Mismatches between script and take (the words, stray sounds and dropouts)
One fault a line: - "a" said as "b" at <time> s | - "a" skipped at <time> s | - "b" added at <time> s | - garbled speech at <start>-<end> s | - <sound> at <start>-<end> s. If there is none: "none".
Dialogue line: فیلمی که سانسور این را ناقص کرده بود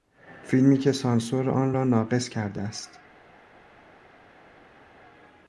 - "این" said as "آن" at 1.5 s
- "بود" said as "است" at 2.6 s